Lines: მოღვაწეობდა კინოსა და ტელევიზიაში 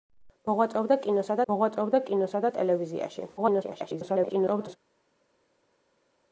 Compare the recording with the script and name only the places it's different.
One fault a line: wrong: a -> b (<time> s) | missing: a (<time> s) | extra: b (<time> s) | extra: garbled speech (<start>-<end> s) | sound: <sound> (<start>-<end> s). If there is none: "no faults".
extra: მოღვაწეობდა კინოსა (1.5 s)
extra: garbled speech (3.4-4.8 s)